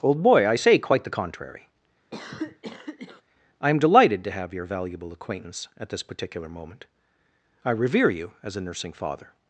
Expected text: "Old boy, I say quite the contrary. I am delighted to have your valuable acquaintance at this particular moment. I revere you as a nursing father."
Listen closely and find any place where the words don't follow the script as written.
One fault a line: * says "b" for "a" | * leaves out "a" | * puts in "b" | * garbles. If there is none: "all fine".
all fine